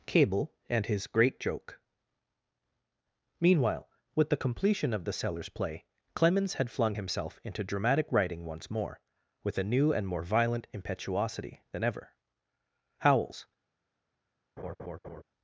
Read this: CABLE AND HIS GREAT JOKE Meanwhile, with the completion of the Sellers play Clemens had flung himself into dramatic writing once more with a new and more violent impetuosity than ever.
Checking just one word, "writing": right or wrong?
right